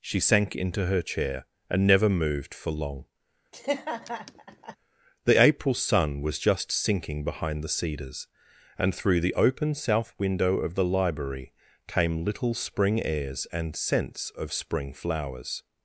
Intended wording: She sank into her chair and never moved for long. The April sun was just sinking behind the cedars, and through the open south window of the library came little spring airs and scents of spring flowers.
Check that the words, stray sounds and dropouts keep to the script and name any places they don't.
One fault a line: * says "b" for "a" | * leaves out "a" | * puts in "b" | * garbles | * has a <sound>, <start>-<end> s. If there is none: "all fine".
* has a laugh, 3.5-4.8 s